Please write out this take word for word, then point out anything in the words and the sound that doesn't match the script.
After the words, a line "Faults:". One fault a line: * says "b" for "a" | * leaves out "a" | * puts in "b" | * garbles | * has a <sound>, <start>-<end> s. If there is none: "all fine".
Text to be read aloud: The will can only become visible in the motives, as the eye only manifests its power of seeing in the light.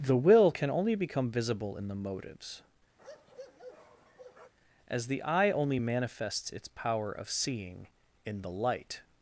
The will can only become visible in the motives, as the eye only manifests its power of seeing in the light.
Faults:
* has a bark, 3.0-4.5 s